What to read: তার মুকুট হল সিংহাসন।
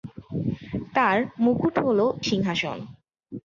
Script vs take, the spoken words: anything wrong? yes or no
no